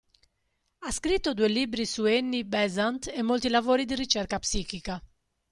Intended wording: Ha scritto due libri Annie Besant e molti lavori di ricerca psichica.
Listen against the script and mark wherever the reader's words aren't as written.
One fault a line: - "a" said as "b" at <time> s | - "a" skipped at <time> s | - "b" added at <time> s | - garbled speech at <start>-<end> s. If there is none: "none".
- "su" added at 1.9 s